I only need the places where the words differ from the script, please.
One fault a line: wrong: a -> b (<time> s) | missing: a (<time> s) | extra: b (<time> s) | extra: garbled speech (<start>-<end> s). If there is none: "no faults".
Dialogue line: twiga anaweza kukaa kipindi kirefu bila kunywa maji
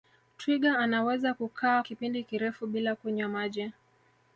no faults